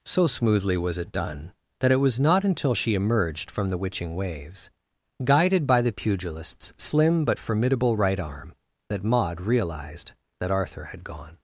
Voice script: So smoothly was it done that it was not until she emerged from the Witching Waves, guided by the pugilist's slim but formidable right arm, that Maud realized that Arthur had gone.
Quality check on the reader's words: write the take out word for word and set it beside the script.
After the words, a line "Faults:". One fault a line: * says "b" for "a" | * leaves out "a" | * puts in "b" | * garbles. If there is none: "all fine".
So smoothly was it done that it was not until she emerged from the Witching Waves, guided by the pugilist's slim but formidable right arm, that Maud realized that Arthur had gone.
Faults:
all fine